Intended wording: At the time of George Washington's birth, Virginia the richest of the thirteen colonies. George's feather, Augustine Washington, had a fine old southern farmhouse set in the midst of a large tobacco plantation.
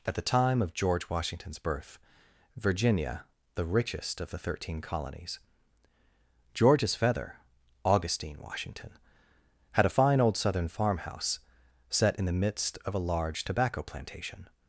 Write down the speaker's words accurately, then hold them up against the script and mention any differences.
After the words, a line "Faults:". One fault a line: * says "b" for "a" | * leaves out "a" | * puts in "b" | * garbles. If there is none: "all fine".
At the time of George Washington's birth, Virginia the richest of the thirteen colonies. George's feather, Augustine Washington, had a fine old southern farmhouse set in the midst of a large tobacco plantation.
Faults:
all fine